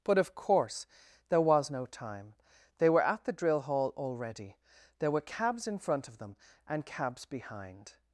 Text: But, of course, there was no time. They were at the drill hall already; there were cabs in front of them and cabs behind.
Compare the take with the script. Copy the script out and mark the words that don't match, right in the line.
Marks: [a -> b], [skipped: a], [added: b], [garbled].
But, of course, there was no time. They were at the drill hall already; there were cabs in front of them and cabs behind.